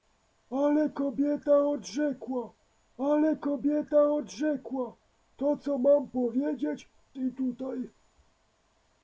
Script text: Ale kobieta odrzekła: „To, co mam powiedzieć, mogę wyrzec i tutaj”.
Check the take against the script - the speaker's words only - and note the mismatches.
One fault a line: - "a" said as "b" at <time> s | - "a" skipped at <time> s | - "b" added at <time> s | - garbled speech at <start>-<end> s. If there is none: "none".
- "ale kobieta odrzekła" added at 3.0 s
- "mogę wyrzec" skipped at 6.9 s